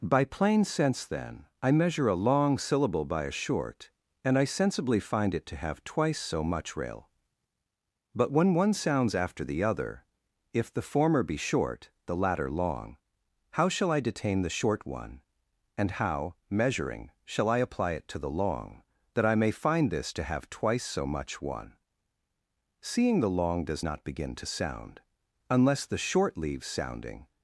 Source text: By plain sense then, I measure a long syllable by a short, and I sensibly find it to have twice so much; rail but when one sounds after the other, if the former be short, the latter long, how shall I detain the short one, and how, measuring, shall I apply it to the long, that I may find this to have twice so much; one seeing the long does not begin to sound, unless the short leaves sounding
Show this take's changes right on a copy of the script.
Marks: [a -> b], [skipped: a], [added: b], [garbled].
By plain sense then, I measure a long syllable by a short, and I sensibly find it to have twice so much; rail but when one sounds after the other, if the former be short, the latter long, how shall I detain the short one, and how, measuring, shall I apply it to the long, that I may find this to have twice so much; one seeing the long does not begin to sound, unless the short leaves sounding